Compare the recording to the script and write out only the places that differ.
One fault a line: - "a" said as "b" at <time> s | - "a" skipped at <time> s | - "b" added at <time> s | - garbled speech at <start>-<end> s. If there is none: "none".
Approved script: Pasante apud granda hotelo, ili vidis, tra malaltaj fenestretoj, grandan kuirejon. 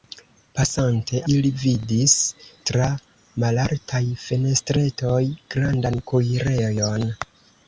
- "apud granda hotelo" skipped at 1.2 s